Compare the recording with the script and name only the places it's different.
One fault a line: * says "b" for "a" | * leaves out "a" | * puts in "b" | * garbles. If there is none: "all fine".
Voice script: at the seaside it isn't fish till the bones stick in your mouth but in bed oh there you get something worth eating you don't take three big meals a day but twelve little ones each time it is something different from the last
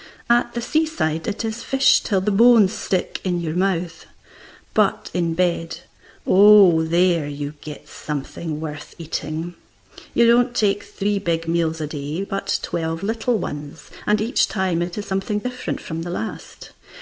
* says "is" for "isn't"
* puts in "and"